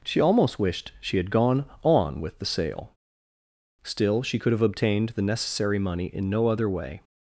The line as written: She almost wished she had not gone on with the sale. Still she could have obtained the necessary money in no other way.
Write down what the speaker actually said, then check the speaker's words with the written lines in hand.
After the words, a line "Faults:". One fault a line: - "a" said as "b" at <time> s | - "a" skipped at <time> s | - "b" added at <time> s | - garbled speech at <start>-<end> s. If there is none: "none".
She almost wished she had gone on with the sale. Still she could have obtained the necessary money in no other way.
Faults:
- "not" skipped at 1.3 s